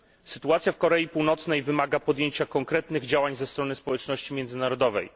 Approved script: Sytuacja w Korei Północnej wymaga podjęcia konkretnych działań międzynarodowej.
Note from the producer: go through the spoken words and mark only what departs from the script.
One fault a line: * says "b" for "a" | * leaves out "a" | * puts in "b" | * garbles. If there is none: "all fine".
* puts in "ze strony społeczności"